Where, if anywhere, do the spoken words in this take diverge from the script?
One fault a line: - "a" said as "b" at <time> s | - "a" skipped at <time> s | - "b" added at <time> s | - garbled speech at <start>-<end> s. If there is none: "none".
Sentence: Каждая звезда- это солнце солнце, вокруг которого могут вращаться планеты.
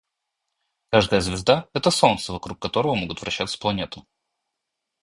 - "солнце" skipped at 2.3 s